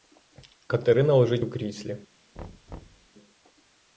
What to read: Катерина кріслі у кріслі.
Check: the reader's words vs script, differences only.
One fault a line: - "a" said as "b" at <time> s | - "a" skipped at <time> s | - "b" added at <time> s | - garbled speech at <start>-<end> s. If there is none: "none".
- "кріслі" said as "лежить" at 1.1 s